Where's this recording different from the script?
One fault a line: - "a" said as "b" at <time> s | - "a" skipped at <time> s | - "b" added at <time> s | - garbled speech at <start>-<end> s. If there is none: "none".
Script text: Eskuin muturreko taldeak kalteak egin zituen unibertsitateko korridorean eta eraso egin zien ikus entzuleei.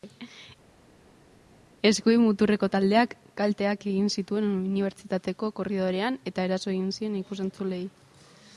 none